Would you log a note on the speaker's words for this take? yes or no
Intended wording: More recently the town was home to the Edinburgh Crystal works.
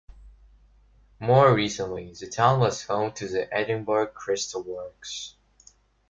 no